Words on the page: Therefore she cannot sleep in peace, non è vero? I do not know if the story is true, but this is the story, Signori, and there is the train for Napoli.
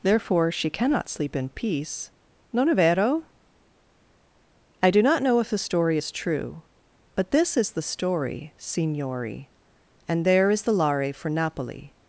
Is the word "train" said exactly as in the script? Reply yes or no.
no